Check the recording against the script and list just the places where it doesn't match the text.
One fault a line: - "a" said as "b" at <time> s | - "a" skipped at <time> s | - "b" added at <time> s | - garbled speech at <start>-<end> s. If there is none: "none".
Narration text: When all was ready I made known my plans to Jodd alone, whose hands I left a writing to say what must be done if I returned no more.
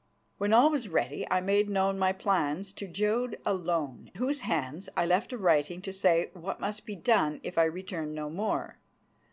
none